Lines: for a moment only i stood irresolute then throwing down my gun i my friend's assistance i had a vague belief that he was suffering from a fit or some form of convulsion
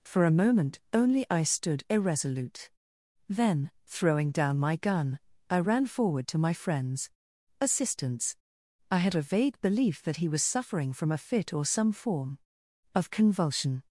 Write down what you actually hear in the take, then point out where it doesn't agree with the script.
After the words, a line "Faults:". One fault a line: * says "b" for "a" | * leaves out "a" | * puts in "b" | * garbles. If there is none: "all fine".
for a moment only i stood irresolute then throwing down my gun i ran forward to my friend's assistance i had a vague belief that he was suffering from a fit or some form of convulsion
Faults:
* puts in "ran forward to"